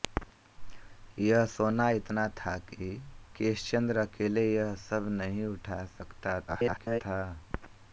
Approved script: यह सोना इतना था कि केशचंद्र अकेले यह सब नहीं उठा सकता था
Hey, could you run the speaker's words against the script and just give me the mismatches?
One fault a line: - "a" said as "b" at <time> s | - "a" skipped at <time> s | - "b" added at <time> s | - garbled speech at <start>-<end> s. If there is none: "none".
- garbled speech at 6.5-7.0 s